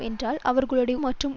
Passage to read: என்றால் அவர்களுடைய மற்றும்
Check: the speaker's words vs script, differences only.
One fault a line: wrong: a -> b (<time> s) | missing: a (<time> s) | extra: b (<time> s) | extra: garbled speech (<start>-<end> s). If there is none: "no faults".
no faults